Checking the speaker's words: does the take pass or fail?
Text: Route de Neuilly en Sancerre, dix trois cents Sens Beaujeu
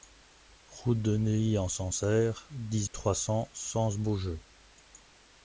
pass